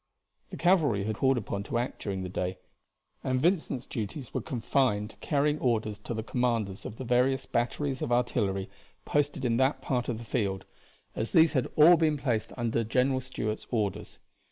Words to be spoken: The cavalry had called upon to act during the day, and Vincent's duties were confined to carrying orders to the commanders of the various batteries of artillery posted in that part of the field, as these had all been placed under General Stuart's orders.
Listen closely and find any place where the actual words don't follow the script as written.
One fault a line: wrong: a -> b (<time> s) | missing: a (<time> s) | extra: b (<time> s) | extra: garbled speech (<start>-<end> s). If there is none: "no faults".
no faults